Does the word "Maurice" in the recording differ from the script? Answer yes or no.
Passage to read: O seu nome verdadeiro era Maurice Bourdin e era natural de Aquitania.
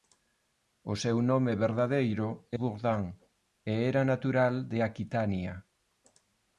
yes